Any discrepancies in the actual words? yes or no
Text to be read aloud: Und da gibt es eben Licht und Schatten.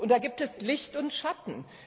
yes